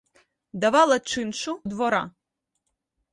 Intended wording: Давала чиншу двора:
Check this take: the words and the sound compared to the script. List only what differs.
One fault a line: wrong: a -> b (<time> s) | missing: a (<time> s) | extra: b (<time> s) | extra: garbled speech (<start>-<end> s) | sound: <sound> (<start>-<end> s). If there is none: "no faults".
no faults